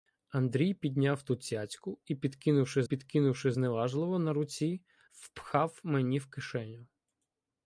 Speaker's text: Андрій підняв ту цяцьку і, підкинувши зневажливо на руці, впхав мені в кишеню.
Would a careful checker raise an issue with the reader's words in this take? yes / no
yes